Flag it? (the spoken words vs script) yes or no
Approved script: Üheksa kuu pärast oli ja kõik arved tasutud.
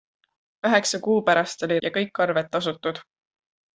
no